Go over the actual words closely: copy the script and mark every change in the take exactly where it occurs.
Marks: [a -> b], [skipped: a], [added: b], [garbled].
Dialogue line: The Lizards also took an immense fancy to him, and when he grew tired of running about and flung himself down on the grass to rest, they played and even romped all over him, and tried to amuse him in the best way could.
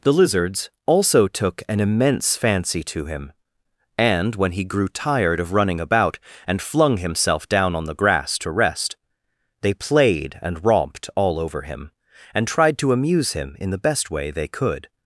The Lizards also took an immense fancy to him, and when he grew tired of running about and flung himself down on the grass to rest, they played and [skipped: even] romped all over him, and tried to amuse him in the best way [added: they] could.